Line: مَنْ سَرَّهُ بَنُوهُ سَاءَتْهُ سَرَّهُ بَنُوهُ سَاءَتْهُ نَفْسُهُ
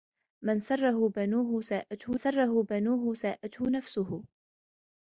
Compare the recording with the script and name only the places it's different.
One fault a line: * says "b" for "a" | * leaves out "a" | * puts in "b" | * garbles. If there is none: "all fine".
all fine